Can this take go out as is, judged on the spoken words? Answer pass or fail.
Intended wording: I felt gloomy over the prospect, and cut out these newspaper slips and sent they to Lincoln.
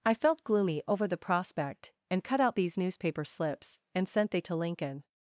pass